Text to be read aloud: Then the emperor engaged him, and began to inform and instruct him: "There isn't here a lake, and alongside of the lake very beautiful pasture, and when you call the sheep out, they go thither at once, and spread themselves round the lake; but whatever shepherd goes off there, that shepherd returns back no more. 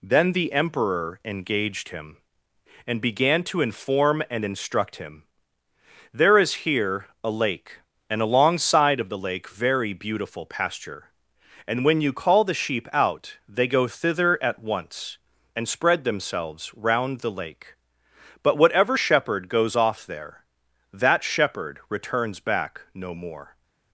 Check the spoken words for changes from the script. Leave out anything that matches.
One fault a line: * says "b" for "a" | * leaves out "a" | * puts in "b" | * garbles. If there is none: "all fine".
* says "is" for "isn't"